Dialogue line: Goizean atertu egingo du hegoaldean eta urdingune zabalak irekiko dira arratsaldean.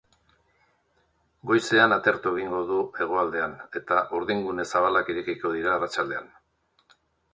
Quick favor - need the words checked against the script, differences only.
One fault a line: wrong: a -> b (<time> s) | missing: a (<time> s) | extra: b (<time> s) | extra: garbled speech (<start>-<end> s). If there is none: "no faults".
no faults